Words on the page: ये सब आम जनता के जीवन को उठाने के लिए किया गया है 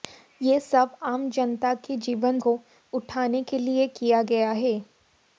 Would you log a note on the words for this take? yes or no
no